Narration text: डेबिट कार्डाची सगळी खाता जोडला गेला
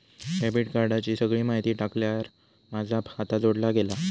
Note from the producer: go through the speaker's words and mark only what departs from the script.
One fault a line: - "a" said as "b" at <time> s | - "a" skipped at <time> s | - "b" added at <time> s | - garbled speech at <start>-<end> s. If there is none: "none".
- "माहिती टाकल्यार माझा" added at 1.4 s